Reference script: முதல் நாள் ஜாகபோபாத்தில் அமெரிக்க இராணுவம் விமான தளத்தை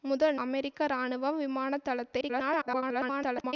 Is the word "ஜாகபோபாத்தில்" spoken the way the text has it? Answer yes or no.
no